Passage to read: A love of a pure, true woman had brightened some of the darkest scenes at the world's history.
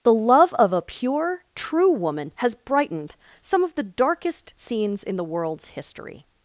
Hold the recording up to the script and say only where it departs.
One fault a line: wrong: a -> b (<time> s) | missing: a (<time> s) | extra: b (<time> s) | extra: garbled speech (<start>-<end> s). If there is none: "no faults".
wrong: A -> The (0.0 s)
wrong: had -> has (2.4 s)
wrong: at -> in (5.0 s)